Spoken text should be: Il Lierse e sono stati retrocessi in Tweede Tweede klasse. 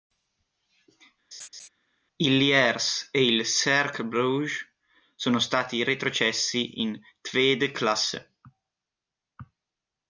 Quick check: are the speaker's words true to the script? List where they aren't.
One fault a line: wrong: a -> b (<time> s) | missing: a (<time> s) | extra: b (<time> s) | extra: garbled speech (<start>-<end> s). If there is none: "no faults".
extra: il Cercle Bruges (3.2 s)
missing: Tweede (7.7 s)